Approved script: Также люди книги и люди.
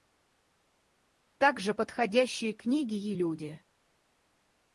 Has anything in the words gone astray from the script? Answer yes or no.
yes